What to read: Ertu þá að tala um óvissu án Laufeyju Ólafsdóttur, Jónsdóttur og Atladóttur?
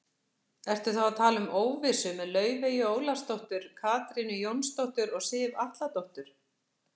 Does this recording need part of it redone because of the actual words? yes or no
yes